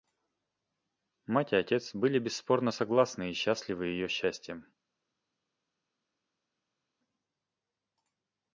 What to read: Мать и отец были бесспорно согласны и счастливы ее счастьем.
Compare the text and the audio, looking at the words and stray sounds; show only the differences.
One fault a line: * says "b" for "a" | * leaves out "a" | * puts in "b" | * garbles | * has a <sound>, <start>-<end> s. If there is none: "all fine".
all fine